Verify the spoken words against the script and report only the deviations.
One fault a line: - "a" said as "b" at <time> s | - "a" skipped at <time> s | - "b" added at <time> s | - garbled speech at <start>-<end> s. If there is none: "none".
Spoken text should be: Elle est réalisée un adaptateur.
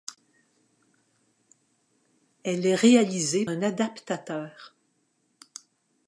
none